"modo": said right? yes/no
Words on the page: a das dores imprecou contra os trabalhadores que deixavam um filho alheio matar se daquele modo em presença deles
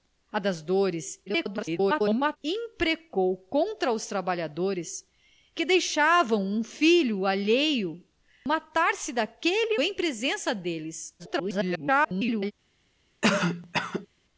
no